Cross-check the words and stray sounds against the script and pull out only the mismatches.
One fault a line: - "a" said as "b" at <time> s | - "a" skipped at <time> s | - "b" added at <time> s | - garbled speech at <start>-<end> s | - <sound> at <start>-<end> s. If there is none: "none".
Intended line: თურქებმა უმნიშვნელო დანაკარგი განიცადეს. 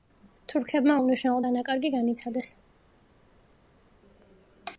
none